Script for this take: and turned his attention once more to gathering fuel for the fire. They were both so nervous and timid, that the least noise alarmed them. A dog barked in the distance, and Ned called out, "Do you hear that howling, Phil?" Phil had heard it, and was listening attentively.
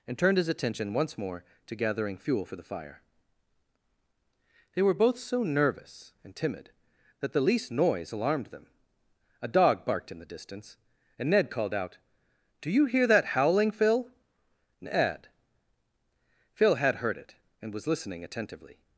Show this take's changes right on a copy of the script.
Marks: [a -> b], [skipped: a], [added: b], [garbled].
and turned his attention once more to gathering fuel for the fire. They were both so nervous and timid, that the least noise alarmed them. A dog barked in the distance, and Ned called out, "Do you hear that howling, Phil?" [added: ned] Phil had heard it, and was listening attentively.